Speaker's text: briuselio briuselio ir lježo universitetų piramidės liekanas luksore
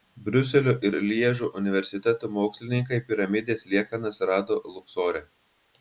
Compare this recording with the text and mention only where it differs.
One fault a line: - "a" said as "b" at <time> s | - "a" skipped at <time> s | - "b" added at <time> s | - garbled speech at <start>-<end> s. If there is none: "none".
- "briuselio" skipped at 0.7 s
- "mokslininkai" added at 2.4 s
- "rado" added at 4.3 s